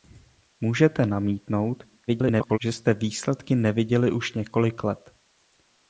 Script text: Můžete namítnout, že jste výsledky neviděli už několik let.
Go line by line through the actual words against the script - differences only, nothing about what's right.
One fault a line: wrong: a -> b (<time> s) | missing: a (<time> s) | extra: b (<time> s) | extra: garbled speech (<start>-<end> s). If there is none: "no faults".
extra: garbled speech (2.1-2.6 s)